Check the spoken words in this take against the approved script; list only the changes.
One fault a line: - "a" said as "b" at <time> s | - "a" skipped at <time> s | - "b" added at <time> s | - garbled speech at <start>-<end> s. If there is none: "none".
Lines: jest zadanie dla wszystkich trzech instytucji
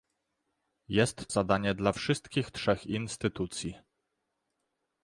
none